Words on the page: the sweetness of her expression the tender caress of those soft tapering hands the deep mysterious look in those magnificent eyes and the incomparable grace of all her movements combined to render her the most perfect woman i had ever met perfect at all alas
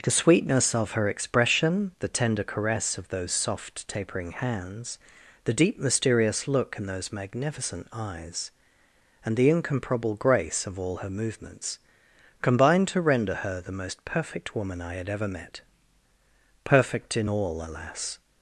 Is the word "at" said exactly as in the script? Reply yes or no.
no